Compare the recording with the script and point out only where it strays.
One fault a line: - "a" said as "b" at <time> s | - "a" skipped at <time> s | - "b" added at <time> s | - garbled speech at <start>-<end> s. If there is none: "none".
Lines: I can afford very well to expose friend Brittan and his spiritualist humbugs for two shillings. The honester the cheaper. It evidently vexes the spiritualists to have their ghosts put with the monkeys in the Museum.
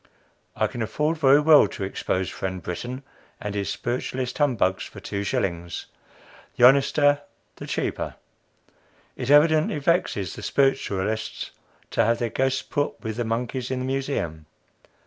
none